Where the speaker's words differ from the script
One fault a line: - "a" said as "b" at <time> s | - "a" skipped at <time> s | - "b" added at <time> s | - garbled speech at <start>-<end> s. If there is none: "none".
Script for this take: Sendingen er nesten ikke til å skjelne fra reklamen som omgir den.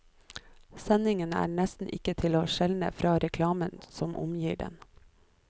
none